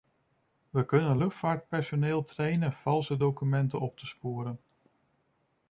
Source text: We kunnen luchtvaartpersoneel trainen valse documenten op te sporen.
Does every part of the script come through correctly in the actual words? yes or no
yes